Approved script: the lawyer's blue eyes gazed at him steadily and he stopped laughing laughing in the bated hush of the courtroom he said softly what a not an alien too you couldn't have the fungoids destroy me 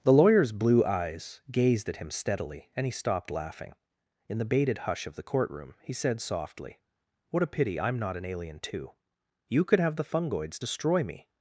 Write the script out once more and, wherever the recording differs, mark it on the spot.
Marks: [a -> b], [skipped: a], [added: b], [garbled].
the lawyer's blue eyes gazed at him steadily and he stopped laughing [skipped: laughing] in the bated hush of the courtroom he said softly what a [added: pity i'm] not an alien too you [couldn't -> could] have the fungoids destroy me